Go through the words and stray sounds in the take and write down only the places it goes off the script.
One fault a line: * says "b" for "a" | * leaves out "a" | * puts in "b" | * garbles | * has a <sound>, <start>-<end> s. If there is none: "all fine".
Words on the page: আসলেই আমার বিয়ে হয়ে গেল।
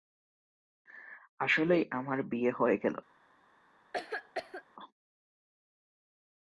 * has a cough, 3.9-4.6 s